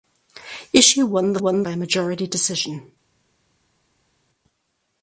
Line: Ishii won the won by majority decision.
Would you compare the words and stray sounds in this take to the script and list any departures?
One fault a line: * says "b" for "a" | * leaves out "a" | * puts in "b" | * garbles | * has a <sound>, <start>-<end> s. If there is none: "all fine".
all fine